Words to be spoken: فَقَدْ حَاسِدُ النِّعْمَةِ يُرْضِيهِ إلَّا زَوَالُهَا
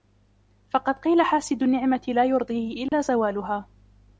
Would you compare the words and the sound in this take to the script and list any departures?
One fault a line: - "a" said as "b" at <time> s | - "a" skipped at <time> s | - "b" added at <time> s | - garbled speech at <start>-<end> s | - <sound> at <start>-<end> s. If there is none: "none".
- "قِيلَ" added at 0.9 s
- "لَا" added at 2.1 s
- dropout at 2.9-2.9 s